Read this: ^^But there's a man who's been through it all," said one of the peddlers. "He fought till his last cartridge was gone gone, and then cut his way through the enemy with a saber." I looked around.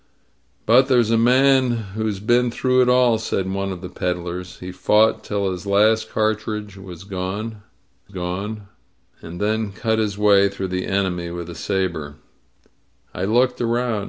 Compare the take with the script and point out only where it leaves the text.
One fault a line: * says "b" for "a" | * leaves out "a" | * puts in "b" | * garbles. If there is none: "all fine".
all fine